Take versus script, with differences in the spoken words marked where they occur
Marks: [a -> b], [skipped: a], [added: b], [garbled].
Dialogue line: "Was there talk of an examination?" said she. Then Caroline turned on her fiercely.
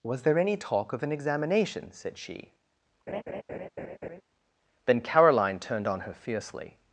"Was there [added: any] talk of an examination?" said she. Then Caroline turned on her fiercely.